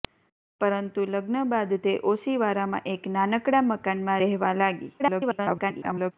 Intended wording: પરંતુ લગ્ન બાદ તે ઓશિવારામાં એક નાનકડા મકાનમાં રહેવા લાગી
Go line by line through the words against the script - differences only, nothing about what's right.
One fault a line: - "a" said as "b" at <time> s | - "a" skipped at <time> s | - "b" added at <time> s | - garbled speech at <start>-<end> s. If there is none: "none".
- garbled speech at 5.0-6.1 s